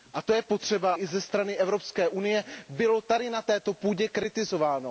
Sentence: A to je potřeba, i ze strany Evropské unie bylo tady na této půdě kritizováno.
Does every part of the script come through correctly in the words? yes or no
yes